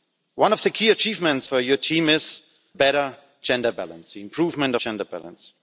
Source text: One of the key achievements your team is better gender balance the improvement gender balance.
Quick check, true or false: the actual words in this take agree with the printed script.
true